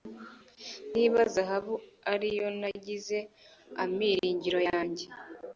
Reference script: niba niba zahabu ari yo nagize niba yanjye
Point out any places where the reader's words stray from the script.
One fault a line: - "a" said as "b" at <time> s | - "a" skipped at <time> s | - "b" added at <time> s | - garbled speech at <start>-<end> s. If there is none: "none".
- "niba" skipped at 1.2 s
- "niba" said as "amiringiro" at 3.8 s